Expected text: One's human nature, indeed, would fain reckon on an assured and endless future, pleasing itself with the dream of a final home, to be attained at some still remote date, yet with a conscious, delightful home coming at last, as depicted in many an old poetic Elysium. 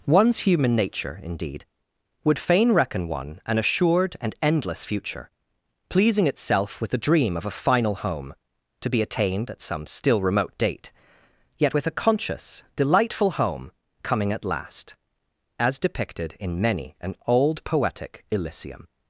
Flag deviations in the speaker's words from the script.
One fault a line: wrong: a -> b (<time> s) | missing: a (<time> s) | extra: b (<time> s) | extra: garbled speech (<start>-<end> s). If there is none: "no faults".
wrong: on -> one (3.1 s)